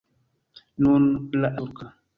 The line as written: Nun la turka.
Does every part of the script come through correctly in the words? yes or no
yes